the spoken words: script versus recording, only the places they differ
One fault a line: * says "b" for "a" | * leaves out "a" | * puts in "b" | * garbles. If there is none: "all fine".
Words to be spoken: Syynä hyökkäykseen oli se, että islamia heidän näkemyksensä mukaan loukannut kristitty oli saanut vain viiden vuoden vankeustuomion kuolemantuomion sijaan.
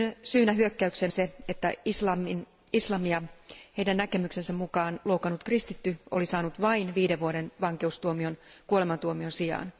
* leaves out "oli"